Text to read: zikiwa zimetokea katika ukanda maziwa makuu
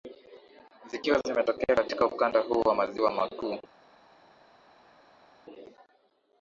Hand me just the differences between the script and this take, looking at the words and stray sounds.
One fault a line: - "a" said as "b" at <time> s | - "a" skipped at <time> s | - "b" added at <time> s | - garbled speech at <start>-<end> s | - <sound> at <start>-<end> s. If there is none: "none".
- "huu wa" added at 2.4 s